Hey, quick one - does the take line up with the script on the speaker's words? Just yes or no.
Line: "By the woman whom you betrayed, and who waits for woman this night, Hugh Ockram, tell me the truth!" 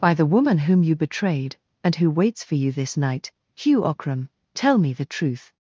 no